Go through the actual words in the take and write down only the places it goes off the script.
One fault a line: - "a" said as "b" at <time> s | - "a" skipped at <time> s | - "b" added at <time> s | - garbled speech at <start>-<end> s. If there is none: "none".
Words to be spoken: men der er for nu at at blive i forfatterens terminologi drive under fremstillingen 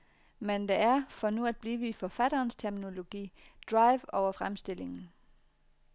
- "at" skipped at 1.6 s
- "under" said as "over" at 4.1 s